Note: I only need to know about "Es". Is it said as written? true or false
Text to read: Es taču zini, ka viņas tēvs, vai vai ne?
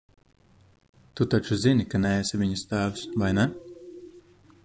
false